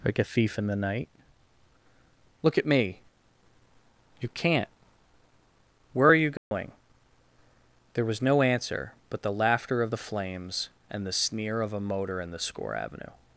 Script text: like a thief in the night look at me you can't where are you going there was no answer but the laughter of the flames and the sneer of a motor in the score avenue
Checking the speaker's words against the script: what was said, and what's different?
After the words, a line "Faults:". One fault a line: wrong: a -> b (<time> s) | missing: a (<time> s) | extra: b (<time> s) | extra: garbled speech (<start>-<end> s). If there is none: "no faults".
like a thief in the night look at me you can't where are you going there was no answer but the laughter of the flames and the sneer of a motor in the score avenue
Faults:
no faults